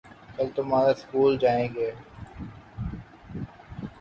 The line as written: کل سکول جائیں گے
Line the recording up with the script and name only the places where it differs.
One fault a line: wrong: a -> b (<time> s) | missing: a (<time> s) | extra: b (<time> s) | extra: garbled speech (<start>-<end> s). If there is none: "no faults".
extra: تمہارے (0.6 s)